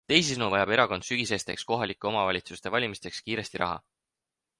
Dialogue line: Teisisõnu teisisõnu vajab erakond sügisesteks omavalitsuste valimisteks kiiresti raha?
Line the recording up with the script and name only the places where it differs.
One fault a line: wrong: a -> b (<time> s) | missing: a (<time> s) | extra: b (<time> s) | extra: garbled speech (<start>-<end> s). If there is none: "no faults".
missing: teisisõnu (0.4 s)
extra: kohalike (1.7 s)